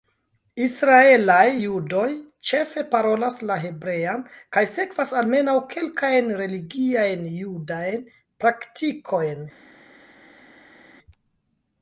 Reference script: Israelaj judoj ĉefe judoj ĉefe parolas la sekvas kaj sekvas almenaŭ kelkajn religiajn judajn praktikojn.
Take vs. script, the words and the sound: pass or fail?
fail